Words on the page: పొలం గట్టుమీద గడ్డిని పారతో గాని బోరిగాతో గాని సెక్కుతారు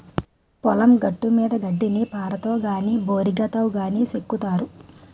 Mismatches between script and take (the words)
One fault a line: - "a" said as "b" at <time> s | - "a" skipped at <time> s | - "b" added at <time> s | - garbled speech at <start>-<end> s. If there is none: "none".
none